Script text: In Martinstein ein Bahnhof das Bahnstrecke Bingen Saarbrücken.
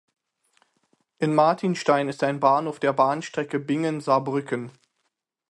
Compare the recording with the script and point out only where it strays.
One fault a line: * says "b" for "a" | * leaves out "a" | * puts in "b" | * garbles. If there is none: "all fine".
* puts in "ist"
* says "der" for "das"